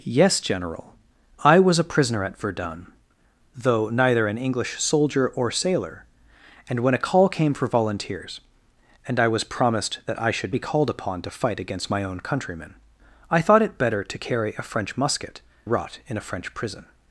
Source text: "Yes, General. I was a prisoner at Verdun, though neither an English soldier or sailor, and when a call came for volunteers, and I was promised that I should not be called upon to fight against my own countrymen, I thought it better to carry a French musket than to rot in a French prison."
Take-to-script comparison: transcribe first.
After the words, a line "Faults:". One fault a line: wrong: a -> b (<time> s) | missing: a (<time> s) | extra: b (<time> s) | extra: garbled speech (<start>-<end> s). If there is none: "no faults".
"Yes, General. I was a prisoner at Verdun, though neither an English soldier or sailor, and when a call came for volunteers, and I was promised that I should be called upon to fight against my own countrymen, I thought it better to carry a French musket rot in a French prison."
Faults:
missing: not (10.6 s)
missing: than to (15.4 s)